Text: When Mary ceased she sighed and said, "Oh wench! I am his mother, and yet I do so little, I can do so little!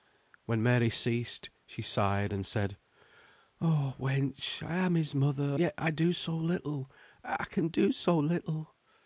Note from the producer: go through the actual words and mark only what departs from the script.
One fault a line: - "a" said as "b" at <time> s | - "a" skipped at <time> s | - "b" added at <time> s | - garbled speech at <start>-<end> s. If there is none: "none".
- "and" skipped at 5.6 s